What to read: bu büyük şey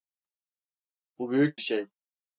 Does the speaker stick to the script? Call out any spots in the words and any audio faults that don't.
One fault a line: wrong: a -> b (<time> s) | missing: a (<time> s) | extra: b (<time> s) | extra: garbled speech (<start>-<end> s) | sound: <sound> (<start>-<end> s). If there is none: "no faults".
no faults